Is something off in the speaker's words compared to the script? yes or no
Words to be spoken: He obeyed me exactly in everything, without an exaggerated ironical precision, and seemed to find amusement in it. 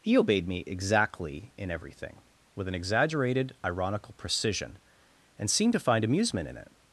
yes